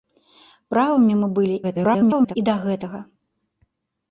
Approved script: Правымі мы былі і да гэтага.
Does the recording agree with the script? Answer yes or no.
no